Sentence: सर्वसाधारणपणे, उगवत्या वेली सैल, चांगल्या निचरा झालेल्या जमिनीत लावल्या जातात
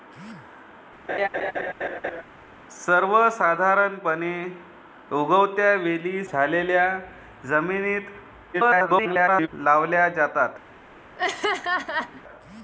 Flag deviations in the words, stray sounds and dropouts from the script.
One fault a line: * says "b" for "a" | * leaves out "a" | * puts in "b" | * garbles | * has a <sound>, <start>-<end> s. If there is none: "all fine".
* has a laugh, 1.1-2.2 s
* leaves out "सैल चांगल्या निचरा"
* garbles
* has a laugh, 11.2-12.2 s